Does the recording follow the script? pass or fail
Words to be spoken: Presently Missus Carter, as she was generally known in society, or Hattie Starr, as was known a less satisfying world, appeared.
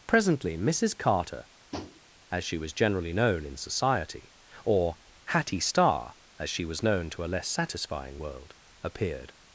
fail